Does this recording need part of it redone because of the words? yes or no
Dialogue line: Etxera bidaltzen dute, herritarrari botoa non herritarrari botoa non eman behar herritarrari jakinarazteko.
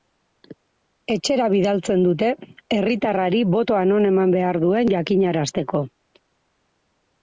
yes